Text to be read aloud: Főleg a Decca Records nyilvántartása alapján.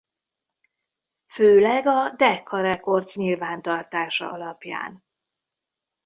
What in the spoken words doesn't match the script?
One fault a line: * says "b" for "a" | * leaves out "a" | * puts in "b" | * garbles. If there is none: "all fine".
all fine